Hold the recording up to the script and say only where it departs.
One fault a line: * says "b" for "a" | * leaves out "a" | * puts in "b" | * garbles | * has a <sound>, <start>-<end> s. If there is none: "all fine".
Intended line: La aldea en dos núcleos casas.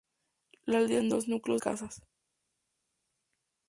all fine